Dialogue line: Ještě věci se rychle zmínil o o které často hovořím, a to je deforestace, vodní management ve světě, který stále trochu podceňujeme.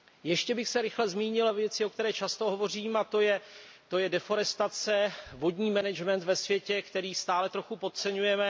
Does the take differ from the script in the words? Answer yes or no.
yes